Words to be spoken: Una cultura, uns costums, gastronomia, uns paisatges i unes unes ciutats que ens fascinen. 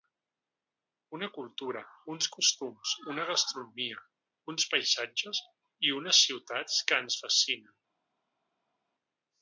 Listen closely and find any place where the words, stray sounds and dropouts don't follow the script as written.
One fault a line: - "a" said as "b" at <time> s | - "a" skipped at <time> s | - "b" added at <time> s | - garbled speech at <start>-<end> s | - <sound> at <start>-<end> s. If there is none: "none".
- "una" added at 3.1 s
- "unes" skipped at 6.2 s